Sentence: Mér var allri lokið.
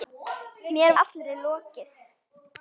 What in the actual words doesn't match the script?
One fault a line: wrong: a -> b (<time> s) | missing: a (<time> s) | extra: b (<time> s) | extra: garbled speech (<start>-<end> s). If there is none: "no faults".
missing: var (0.9 s)